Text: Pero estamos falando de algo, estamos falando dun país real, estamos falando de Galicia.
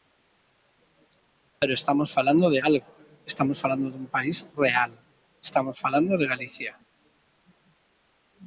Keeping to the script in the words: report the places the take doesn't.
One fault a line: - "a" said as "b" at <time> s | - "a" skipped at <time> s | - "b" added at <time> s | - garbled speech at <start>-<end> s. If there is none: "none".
none